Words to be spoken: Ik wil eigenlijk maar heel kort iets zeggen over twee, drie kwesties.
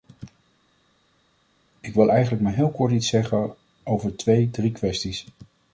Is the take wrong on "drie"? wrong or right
right